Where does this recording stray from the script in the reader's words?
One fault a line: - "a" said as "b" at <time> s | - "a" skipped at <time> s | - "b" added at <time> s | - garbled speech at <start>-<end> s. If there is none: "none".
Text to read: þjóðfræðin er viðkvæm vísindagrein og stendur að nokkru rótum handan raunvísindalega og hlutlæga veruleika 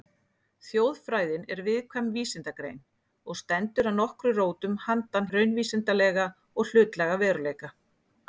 none